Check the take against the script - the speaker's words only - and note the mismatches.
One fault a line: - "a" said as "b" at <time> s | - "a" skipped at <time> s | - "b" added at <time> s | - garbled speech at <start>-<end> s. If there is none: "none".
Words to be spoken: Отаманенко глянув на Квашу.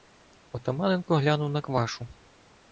none